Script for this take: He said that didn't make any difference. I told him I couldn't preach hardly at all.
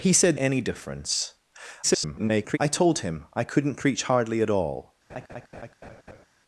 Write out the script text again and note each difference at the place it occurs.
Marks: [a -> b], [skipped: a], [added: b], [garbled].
He said [skipped: that didn't make] any difference. [garbled] I told him I couldn't preach hardly at all.